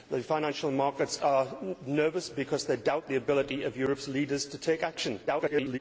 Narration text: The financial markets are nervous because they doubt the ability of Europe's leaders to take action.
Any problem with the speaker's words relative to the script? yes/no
yes